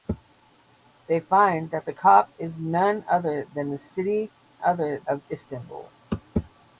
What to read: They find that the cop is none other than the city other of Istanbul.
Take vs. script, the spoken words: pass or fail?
pass